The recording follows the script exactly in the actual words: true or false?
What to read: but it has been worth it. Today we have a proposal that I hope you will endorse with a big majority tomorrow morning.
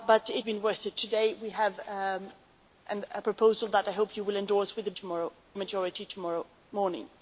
false